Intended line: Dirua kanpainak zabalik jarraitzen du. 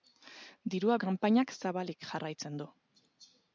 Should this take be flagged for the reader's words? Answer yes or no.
no